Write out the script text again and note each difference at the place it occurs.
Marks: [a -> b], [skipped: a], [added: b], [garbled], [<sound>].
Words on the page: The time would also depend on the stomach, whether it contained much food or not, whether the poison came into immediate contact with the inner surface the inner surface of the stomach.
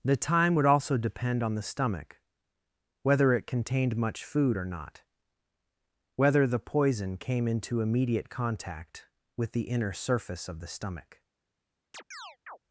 The time would also depend on the stomach, whether it contained much food or not, whether the poison came into immediate contact with the inner surface [skipped: the inner surface] of the stomach. [chirp]